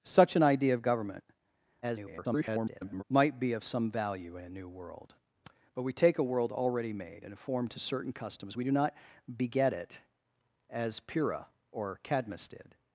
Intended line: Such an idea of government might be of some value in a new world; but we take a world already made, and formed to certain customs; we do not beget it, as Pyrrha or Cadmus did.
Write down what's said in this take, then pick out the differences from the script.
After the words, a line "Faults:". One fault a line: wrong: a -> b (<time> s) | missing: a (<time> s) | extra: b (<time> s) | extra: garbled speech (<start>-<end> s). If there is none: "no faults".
Such an idea of government [garbled] might be of some value in a new world; but we take a world already made, and formed to certain customs; we do not beget it, as Pyrrha or Cadmus did.
Faults:
extra: garbled speech (1.8-3.0 s)